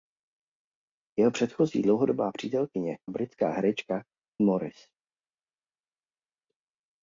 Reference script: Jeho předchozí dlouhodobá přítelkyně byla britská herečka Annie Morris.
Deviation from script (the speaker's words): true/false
true